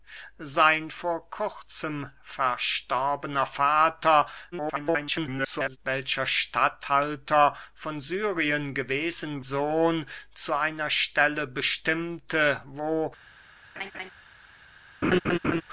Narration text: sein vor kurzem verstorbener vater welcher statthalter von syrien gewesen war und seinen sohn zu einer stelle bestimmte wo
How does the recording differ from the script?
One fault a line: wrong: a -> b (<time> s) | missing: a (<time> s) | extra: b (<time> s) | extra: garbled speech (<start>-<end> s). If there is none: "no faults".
extra: garbled speech (4.5-5.8 s)
missing: war und seinen (9.4 s)